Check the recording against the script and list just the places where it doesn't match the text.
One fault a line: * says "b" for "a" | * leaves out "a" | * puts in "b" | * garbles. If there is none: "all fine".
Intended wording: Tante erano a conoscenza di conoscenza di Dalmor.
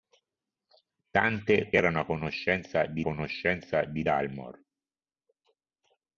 all fine